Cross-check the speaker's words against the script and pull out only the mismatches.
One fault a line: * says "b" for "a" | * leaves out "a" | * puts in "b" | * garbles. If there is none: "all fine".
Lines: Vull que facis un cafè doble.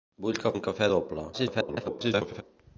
* leaves out "facis"
* garbles